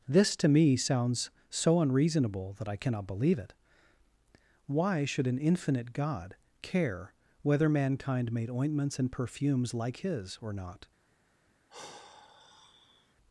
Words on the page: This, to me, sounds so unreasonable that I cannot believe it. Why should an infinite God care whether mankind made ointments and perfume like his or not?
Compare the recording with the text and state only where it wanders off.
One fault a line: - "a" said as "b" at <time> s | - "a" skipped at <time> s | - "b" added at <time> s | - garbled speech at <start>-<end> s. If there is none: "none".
- "perfume" said as "perfumes" at 9.1 s